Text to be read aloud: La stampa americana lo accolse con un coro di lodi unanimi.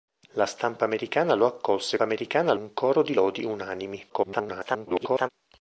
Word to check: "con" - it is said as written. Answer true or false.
false